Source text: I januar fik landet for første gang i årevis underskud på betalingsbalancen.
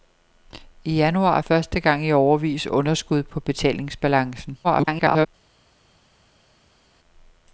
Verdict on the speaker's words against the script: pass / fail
fail